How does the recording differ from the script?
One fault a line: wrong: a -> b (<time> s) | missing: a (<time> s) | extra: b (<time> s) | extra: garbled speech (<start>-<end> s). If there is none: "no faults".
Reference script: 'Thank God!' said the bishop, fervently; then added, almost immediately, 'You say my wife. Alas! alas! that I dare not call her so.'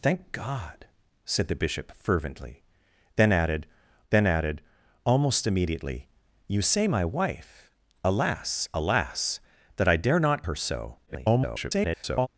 extra: then added (4.1 s)
missing: call (10.4 s)
extra: garbled speech (11.1-12.3 s)